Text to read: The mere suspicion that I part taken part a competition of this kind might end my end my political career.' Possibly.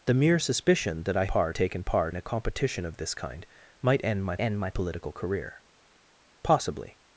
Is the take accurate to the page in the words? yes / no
yes